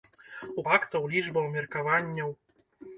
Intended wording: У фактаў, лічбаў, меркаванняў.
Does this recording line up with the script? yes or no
yes